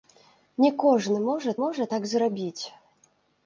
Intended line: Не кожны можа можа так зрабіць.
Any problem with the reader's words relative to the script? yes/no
no